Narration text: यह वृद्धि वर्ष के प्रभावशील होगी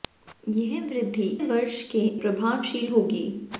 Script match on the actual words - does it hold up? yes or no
yes